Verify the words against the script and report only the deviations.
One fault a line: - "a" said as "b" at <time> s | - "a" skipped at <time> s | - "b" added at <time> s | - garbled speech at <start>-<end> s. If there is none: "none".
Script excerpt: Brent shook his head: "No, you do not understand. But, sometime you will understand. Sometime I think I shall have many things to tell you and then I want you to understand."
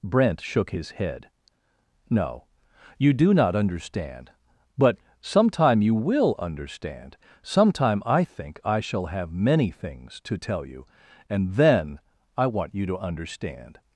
none